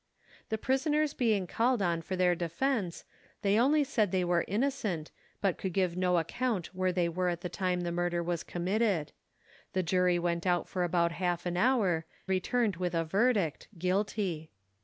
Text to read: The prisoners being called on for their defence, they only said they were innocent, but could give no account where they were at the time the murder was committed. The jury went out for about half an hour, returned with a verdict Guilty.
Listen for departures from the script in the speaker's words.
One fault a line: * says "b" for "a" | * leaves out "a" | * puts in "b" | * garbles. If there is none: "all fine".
all fine